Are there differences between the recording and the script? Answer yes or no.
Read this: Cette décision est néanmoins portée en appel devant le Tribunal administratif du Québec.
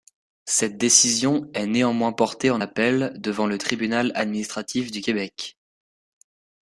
no